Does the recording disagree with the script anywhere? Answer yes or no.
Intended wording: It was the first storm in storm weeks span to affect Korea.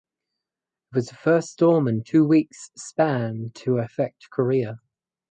yes